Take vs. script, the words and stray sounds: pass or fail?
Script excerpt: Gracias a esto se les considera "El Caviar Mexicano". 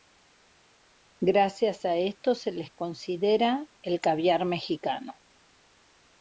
pass